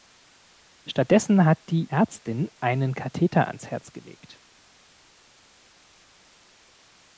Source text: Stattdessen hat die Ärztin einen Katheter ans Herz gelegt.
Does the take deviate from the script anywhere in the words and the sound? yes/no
no